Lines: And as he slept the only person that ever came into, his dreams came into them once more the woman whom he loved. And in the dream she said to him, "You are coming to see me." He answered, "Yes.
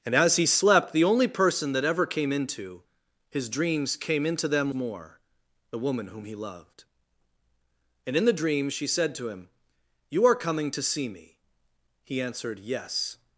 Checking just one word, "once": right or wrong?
wrong